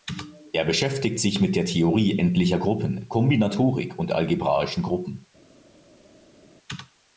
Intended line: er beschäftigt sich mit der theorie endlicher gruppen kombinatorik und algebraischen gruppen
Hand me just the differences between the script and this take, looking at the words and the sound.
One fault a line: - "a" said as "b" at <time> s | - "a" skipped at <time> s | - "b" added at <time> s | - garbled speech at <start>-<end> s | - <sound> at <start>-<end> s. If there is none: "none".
none